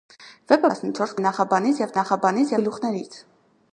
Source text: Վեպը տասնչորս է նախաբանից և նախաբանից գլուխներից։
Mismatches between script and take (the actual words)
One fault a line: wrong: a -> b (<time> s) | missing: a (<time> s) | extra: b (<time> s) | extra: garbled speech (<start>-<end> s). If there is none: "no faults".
no faults